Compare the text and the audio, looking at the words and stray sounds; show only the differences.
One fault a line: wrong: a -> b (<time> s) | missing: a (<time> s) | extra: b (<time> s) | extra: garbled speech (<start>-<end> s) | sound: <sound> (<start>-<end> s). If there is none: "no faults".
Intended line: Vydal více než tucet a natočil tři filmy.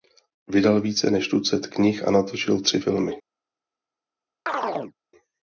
extra: knih (1.7 s)
sound: chirp (4.5-4.9 s)